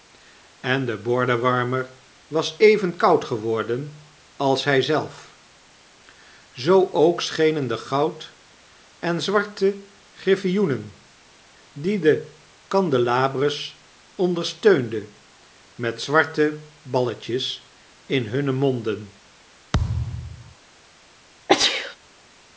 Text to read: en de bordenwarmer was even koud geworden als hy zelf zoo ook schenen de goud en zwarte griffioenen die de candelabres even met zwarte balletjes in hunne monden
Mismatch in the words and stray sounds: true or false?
true